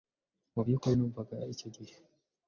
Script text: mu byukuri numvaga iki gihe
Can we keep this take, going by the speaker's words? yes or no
no